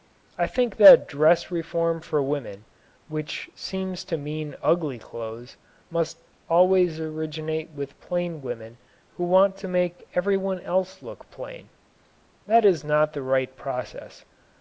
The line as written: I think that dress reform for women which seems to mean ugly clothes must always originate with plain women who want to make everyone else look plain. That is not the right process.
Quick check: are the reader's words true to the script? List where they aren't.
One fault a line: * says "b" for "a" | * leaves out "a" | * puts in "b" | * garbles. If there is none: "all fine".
all fine